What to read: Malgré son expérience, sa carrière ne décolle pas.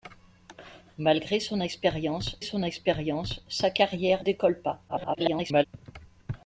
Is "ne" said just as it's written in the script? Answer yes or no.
no